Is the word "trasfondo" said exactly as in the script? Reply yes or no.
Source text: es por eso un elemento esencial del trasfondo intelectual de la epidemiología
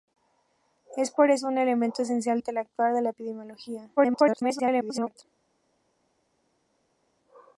no